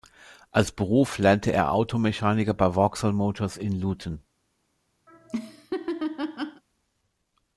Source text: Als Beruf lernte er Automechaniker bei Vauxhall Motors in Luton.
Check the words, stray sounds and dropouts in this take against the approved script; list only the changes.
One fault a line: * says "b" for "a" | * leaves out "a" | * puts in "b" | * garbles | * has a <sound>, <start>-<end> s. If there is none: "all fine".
* has a laugh, 5.1-6.6 s